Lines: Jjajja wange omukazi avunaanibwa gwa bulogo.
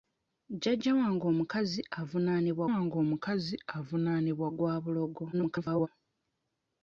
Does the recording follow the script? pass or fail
fail